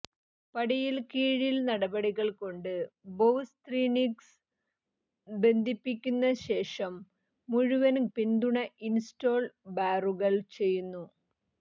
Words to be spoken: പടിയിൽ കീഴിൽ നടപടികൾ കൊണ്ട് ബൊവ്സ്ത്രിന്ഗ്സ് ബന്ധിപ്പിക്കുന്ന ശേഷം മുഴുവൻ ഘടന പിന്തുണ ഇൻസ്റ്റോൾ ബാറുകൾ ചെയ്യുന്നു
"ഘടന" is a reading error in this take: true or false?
true